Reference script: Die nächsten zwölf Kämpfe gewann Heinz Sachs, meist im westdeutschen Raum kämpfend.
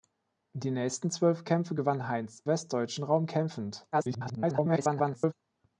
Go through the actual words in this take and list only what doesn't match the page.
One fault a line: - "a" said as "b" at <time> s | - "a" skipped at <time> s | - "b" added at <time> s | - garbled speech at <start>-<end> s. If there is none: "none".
- "Sachs meist im" skipped at 2.4 s
- garbled speech at 3.9-5.3 s